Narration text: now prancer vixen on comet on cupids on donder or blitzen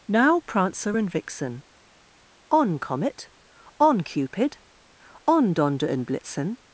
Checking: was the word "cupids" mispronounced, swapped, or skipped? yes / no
yes